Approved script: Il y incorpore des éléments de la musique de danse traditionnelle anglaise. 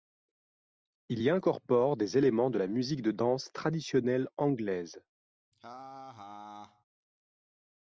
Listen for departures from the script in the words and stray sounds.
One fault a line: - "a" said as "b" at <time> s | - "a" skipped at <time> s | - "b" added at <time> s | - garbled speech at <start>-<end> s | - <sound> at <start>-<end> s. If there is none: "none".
- laugh at 5.5-6.8 s